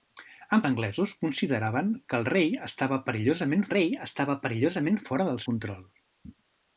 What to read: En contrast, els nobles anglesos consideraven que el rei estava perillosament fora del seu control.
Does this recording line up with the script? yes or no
no